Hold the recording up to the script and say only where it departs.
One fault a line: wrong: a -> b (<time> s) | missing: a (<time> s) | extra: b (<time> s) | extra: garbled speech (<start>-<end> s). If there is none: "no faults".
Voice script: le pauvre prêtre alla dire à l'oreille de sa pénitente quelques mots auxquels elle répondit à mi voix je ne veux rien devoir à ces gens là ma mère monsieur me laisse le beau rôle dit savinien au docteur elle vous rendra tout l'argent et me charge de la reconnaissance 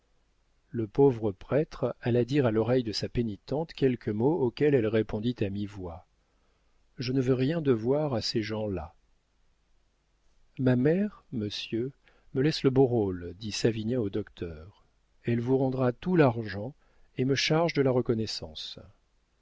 no faults